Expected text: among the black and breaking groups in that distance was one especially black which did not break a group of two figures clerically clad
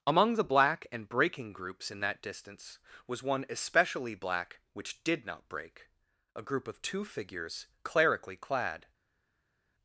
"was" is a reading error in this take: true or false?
false